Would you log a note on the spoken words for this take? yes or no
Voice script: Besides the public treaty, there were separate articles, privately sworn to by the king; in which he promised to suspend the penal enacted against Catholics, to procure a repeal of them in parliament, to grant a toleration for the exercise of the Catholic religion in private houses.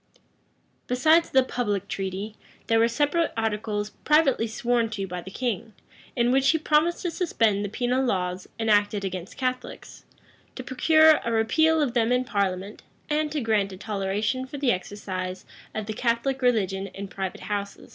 yes